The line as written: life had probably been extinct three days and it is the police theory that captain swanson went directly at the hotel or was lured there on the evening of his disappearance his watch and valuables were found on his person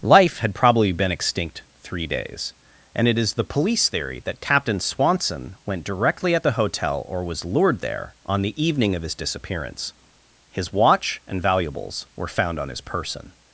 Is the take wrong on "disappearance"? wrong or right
right